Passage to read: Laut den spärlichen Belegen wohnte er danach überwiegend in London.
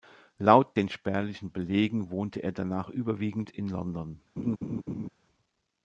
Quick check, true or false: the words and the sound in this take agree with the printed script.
false